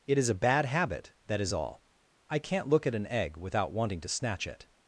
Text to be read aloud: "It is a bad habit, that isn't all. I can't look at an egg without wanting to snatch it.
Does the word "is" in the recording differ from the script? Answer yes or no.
no